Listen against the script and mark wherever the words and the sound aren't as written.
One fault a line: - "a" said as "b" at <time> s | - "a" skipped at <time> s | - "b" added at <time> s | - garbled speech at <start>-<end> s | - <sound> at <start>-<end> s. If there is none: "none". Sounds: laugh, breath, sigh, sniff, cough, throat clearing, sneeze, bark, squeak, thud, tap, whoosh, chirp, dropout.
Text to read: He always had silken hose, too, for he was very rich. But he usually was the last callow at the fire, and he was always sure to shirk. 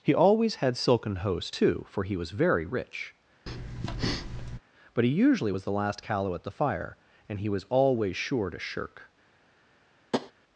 - breath at 3.5-4.6 s
- tap at 10.1-10.3 s